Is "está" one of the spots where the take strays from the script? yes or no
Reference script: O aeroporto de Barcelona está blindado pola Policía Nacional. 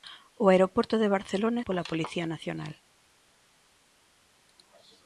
yes